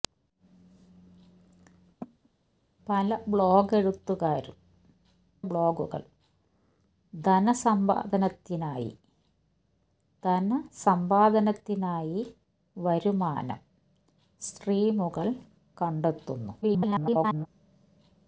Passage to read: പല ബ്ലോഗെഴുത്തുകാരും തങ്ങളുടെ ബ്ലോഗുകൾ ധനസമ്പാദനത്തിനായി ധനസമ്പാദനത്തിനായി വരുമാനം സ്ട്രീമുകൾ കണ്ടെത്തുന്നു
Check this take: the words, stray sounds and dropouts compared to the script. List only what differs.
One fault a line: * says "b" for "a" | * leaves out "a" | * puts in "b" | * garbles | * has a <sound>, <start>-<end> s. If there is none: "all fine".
* has a cough, 2.0-2.3 s
* leaves out "തങ്ങളുടെ"
* garbles